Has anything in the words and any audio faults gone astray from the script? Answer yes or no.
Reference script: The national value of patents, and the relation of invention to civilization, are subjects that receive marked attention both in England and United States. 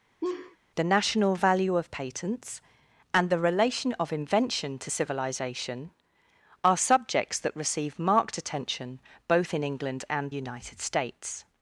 yes